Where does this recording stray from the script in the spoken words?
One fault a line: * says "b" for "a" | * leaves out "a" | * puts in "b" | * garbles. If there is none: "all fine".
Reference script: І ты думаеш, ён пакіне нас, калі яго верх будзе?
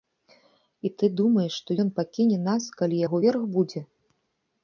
* puts in "што"